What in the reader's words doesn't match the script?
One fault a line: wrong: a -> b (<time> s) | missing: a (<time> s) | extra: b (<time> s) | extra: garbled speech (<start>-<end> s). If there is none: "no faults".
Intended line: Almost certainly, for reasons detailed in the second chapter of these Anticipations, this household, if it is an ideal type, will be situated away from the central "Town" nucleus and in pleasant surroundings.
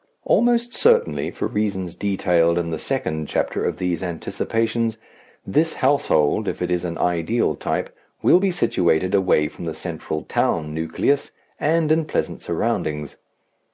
no faults